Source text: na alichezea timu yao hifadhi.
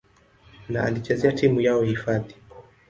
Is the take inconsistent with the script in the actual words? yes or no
no